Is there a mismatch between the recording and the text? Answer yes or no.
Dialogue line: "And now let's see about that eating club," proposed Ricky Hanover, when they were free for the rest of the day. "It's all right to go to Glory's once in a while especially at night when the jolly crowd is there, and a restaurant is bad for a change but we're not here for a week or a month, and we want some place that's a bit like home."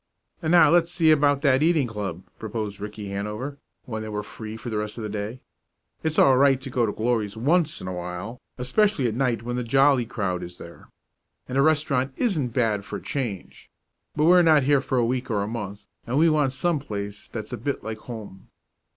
yes